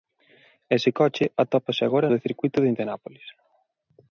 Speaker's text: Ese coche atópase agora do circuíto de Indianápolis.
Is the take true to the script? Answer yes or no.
yes